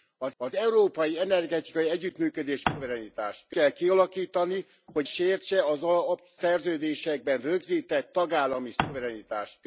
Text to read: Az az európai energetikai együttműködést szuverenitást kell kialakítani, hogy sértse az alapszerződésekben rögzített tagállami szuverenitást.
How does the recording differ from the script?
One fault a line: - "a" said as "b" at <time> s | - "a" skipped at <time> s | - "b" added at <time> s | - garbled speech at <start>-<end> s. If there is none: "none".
none